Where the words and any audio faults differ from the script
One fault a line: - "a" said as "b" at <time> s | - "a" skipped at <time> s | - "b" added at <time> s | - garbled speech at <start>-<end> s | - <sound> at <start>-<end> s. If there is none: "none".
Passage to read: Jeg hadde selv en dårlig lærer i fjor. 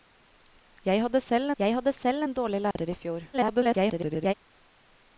- "jeg hadde selv" added at 1.6 s
- dropout at 2.7-2.8 s
- garbled speech at 3.3-4.3 s